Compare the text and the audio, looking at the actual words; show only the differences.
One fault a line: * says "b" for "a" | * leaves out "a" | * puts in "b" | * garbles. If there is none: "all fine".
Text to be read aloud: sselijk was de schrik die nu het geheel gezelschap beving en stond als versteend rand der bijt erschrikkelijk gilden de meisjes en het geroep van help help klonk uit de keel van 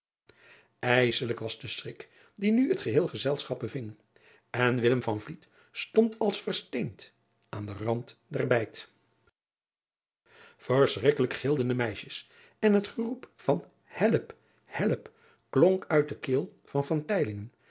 * puts in "aan den"